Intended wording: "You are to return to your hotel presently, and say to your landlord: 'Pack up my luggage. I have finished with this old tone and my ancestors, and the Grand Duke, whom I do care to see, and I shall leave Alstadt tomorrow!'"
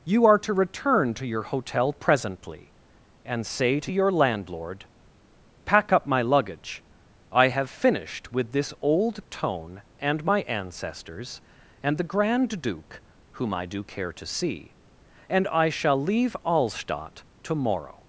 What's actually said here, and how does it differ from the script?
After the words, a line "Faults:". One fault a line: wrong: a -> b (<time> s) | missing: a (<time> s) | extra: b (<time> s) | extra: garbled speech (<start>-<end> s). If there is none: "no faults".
"You are to return to your hotel presently, and say to your landlord: 'Pack up my luggage. I have finished with this old tone and my ancestors, and the Grand Duke, whom I do care to see, and I shall leave Alstadt tomorrow!'"
Faults:
no faults